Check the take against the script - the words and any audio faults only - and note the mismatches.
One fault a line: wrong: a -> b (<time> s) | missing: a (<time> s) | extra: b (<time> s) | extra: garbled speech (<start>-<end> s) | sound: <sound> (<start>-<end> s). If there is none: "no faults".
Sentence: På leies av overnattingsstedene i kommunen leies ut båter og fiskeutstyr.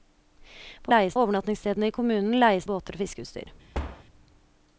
sound: thud (3.7-4.0 s)